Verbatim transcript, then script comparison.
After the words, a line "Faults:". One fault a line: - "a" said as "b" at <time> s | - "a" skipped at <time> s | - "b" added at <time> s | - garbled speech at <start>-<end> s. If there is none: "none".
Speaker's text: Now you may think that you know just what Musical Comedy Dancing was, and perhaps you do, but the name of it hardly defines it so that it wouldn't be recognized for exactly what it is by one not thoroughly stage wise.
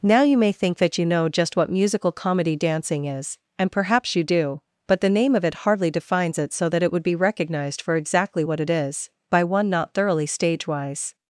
Now you may think that you know just what Musical Comedy Dancing is, and perhaps you do, but the name of it hardly defines it so that it would be recognized for exactly what it is by one not thoroughly stage wise.
Faults:
- "was" said as "is" at 3.0 s
- "wouldn't" said as "would" at 6.9 s